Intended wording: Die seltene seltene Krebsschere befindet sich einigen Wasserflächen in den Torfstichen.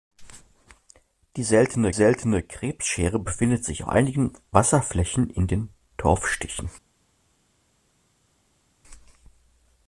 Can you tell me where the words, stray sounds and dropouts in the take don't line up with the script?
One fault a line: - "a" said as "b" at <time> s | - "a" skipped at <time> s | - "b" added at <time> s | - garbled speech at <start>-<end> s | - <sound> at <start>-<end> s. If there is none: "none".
none